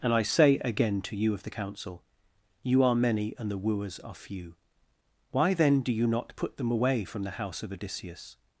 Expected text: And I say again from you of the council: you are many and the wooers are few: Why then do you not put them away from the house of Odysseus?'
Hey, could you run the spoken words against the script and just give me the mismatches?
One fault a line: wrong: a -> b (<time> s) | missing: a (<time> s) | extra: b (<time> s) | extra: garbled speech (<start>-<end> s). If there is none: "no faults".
wrong: from -> to (1.0 s)